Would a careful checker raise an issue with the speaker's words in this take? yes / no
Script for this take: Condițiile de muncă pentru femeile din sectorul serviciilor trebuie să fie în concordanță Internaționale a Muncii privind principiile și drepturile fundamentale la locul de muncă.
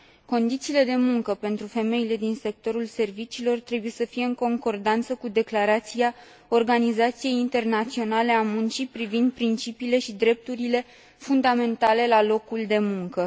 yes